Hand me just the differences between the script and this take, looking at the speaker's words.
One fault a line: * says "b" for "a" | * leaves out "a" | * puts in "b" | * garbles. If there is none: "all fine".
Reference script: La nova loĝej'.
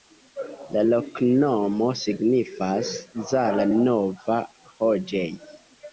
* puts in "loknomo signifas Zala"